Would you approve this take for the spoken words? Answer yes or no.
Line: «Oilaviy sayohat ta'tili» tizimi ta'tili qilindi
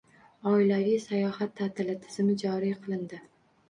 no